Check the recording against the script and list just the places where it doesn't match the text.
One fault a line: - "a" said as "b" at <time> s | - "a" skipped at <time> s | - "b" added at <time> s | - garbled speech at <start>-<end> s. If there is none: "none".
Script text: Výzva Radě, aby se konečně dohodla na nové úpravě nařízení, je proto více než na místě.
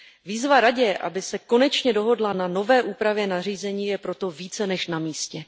none